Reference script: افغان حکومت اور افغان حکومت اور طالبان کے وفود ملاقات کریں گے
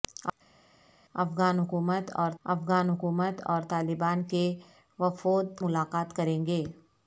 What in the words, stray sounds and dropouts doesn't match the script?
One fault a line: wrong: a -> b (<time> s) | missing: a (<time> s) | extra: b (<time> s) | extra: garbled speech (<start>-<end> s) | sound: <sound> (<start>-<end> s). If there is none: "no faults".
no faults